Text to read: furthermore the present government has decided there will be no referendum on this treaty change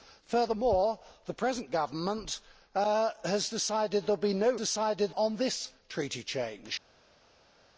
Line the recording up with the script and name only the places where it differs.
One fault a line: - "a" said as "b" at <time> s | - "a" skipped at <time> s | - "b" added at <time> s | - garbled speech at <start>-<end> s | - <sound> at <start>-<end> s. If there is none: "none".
- "referendum" said as "decided" at 4.6 s